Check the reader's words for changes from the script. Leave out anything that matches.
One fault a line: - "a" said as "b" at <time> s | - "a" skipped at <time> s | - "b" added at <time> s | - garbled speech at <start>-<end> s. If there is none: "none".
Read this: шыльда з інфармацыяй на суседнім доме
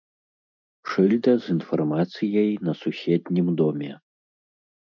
none